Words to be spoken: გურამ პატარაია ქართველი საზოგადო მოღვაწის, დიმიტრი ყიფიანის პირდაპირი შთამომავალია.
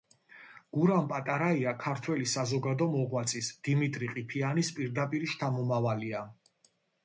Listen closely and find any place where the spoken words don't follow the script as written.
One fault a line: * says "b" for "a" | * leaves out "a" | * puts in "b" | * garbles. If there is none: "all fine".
all fine